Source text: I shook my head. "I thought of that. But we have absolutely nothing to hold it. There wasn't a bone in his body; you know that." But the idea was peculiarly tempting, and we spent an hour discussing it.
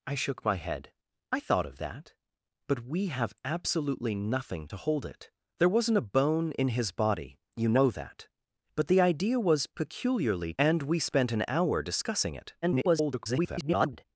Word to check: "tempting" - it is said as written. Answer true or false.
false